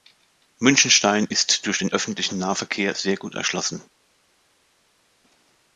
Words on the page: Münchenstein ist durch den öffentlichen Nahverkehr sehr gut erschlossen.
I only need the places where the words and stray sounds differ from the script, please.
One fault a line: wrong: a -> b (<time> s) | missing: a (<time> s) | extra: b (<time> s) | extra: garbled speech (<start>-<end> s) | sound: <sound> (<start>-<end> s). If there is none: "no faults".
no faults